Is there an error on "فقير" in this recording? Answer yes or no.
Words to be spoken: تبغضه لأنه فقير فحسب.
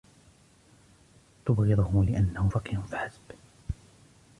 no